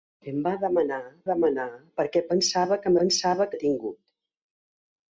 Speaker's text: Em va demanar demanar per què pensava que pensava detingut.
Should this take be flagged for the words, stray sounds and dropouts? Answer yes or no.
no